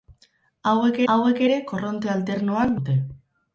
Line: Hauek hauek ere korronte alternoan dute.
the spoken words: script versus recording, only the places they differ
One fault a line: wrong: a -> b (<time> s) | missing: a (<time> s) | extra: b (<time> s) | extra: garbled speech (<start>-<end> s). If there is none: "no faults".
no faults